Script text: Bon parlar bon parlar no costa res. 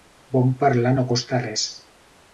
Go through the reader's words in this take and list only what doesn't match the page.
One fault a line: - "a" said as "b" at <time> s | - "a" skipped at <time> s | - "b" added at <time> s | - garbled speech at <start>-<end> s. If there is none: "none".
- "bon parlar" skipped at 0.9 s